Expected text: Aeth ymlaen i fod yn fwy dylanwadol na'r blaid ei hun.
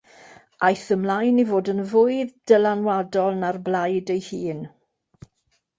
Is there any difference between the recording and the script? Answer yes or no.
no